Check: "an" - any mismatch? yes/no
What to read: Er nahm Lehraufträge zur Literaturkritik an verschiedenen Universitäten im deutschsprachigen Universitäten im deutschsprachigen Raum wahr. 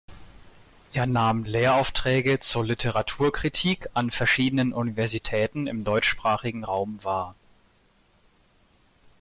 no